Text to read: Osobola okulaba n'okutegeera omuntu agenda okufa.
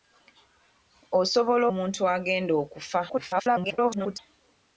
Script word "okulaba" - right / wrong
wrong